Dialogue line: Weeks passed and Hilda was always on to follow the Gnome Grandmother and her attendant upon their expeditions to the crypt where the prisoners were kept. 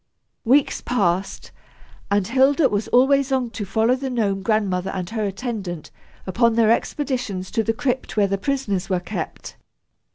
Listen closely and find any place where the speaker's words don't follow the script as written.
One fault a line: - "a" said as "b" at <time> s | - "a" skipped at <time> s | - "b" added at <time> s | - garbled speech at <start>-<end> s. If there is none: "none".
none